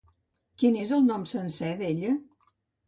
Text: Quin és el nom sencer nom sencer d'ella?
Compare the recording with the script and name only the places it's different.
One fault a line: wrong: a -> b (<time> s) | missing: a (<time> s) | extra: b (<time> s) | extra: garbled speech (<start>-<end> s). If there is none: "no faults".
missing: nom sencer (1.7 s)